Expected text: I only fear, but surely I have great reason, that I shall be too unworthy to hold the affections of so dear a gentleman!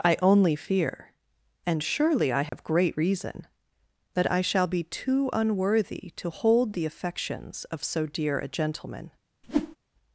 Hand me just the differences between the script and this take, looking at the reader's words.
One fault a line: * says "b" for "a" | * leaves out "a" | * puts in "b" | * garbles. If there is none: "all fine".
* says "and" for "but"